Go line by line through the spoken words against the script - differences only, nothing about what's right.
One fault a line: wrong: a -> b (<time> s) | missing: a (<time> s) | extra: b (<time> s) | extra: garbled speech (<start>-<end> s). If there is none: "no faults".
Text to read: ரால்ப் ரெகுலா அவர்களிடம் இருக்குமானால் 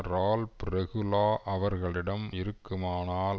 no faults